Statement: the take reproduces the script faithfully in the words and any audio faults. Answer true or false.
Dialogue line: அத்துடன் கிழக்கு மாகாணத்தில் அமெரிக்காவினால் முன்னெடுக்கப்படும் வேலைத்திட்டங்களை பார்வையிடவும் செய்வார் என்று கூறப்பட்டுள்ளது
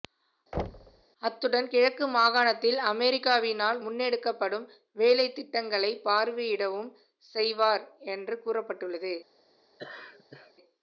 false